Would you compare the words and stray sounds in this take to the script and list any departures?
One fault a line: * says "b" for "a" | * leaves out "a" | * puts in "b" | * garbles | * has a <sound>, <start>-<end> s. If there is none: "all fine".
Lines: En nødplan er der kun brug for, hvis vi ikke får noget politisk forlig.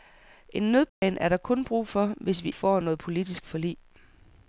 * has a dropout, 0.9-1.0 s
* leaves out "ikke"